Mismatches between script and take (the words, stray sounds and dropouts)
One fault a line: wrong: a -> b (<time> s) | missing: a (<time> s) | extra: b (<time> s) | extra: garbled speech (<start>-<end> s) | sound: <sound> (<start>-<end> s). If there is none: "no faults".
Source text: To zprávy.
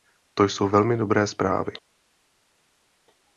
extra: jsou velmi dobré (0.4 s)